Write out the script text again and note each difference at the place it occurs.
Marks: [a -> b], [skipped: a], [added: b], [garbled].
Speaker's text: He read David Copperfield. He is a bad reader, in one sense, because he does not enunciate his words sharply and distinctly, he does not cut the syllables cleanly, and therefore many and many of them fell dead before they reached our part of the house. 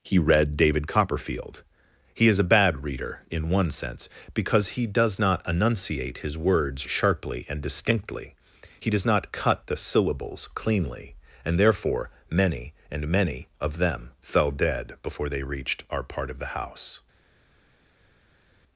He read David Copperfield. He is a bad reader, in one sense, because he does not enunciate his words sharply and distinctly, he does not cut the syllables cleanly, and therefore many and many of them fell dead before they reached our part of the house.